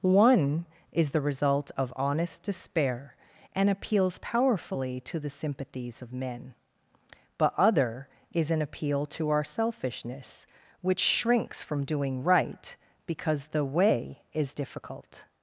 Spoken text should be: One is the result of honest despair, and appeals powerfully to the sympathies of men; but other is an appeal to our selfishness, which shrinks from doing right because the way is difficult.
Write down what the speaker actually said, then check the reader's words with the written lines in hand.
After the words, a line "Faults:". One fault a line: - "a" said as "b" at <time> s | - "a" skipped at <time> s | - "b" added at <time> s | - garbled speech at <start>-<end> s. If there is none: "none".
One is the result of honest despair, and appeals powerfully to the sympathies of men; but other is an appeal to our selfishness, which shrinks from doing right because the way is difficult.
Faults:
none